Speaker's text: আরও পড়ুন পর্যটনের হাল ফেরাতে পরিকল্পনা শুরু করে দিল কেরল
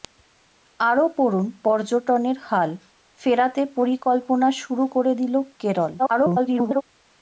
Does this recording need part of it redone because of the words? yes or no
yes